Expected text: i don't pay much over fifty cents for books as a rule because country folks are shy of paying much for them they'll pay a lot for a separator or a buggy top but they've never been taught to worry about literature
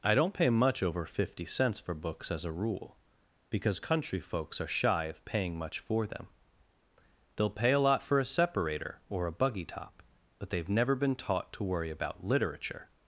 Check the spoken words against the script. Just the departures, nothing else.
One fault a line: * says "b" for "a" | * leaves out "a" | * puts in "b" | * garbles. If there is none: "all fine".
all fine